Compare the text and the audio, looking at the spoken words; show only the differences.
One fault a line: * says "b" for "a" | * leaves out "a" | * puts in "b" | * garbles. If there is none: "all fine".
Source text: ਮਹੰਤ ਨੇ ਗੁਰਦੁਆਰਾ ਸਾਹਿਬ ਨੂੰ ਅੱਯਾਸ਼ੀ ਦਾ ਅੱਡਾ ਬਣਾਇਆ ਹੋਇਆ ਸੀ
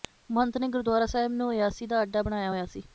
all fine